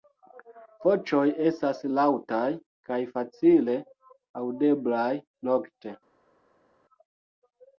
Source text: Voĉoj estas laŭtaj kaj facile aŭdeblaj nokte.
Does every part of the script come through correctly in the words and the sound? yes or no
yes